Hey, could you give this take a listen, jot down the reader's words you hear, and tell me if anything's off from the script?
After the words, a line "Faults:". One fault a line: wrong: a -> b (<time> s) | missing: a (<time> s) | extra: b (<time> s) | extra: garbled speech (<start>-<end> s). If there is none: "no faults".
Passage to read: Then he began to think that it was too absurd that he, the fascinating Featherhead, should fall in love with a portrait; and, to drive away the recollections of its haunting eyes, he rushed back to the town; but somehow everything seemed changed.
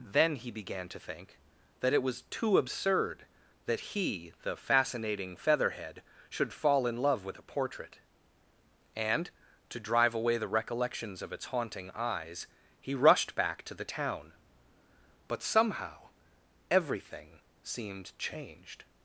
Then he began to think that it was too absurd that he, the fascinating Featherhead, should fall in love with a portrait; and, to drive away the recollections of its haunting eyes, he rushed back to the town; but somehow everything seemed changed.
Faults:
no faults